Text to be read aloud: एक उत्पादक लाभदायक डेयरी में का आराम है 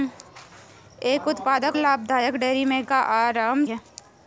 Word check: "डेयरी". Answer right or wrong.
right